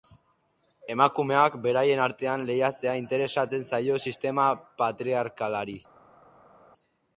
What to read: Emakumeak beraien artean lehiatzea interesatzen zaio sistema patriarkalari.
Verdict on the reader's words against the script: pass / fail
pass